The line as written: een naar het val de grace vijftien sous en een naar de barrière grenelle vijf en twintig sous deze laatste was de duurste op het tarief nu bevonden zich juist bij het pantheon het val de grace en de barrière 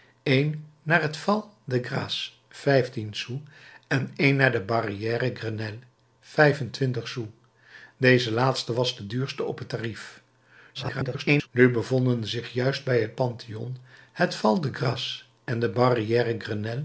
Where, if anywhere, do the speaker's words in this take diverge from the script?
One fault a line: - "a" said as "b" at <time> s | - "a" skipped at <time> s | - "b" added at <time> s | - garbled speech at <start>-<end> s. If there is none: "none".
- garbled speech at 10.7-11.5 s